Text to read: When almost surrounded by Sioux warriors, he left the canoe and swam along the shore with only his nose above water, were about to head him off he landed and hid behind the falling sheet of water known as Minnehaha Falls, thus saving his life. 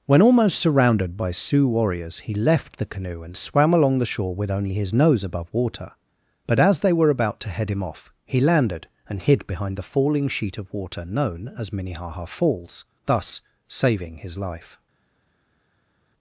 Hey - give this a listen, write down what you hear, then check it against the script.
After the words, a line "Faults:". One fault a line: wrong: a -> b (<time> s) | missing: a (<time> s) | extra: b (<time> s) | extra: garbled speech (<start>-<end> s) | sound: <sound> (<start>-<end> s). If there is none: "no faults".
When almost surrounded by Sioux warriors, he left the canoe and swam along the shore with only his nose above water, but as they were about to head him off he landed and hid behind the falling sheet of water known as Minnehaha Falls, thus saving his life.
Faults:
extra: but as they (6.5 s)